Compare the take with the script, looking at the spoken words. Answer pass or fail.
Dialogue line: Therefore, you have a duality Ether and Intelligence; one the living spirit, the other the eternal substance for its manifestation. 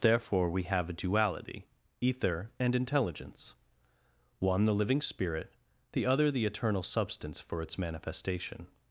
fail